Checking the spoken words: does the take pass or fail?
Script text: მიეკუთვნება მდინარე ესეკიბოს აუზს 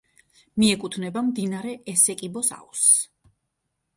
pass